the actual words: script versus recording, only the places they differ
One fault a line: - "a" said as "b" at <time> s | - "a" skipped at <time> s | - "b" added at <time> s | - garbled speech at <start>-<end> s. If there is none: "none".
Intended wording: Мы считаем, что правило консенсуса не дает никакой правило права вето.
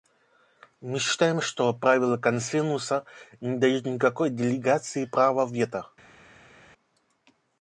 - "правило" said as "делегации" at 4.3 s